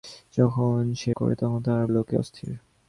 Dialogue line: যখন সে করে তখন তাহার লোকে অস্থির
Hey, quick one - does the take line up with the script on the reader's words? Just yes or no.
yes